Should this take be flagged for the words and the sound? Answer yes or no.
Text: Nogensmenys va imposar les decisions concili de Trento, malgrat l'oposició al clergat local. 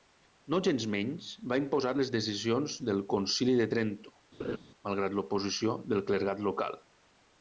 yes